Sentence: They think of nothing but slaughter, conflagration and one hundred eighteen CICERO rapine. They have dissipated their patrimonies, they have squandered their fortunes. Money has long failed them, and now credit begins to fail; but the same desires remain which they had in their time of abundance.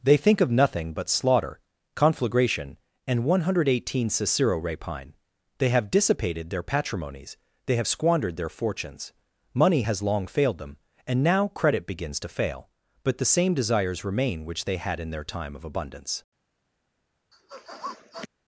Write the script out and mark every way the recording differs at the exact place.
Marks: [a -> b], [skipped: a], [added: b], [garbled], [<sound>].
They think of nothing but slaughter, conflagration and one hundred eighteen CICERO rapine. They have dissipated their patrimonies, they have squandered their fortunes. Money has long failed them, and now credit begins to fail; but the same desires remain which they had in their time of abundance. [sniff]